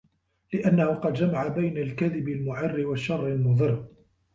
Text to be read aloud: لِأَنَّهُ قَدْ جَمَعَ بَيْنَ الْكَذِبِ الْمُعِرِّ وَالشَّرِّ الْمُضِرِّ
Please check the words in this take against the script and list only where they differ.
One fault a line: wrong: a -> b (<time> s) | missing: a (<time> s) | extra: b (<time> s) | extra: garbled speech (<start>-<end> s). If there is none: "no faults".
no faults